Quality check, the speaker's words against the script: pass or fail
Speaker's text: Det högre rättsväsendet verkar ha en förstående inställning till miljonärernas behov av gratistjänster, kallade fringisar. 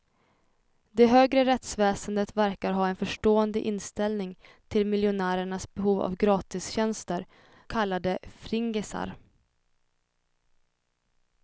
pass